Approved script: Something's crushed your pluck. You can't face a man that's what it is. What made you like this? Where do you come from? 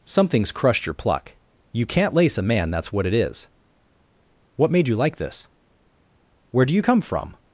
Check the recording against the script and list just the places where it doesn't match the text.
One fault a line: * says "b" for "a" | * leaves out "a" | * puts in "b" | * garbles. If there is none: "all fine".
* says "lace" for "face"